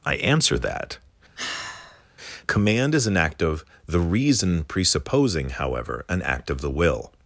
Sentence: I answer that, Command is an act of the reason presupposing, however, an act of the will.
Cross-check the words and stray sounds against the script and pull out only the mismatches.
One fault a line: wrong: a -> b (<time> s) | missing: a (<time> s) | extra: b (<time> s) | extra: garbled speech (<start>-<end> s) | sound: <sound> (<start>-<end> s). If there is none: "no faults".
sound: sigh (1.4-2.0 s)